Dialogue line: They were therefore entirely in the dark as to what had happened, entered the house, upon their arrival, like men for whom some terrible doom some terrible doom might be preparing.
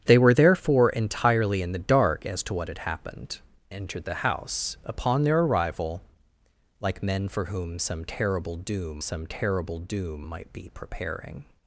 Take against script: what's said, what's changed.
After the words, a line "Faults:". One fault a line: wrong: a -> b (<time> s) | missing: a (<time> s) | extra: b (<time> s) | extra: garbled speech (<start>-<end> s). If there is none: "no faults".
They were therefore entirely in the dark as to what had happened, entered the house, upon their arrival, like men for whom some terrible doom some terrible doom might be preparing.
Faults:
no faults